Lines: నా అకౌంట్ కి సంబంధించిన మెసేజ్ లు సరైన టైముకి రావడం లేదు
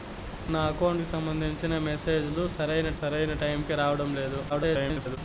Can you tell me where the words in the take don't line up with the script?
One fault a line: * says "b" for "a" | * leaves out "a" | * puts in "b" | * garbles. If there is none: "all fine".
* puts in "సరైన"
* garbles